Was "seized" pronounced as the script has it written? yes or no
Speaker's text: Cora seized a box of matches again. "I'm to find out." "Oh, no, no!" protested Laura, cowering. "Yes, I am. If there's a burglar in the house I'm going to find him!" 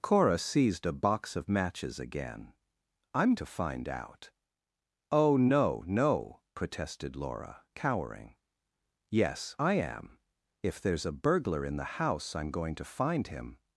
yes